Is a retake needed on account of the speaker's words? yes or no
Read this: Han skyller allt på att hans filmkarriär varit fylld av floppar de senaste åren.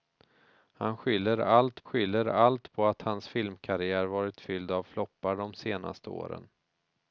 yes